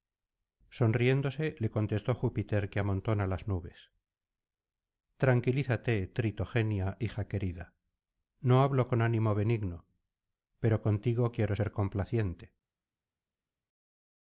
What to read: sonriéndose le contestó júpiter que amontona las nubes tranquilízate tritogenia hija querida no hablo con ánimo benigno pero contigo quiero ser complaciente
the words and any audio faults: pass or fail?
pass